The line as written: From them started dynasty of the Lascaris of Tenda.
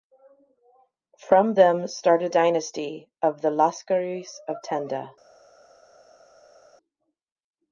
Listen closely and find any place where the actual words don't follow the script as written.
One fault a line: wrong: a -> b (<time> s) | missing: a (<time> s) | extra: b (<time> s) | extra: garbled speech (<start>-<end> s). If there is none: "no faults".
no faults